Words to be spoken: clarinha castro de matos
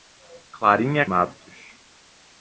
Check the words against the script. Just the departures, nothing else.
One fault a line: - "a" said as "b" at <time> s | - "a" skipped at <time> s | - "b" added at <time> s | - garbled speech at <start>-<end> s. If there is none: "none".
- "castro de" skipped at 1.1 s